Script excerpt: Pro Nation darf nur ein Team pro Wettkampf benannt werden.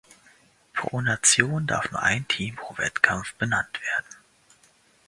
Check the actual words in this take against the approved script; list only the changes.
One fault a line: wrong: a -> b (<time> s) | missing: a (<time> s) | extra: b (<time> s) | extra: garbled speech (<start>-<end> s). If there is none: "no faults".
no faults